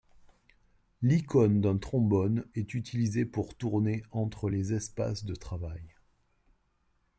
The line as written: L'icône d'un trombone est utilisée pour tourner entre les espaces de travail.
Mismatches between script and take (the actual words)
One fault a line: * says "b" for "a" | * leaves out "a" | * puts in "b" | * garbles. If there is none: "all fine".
all fine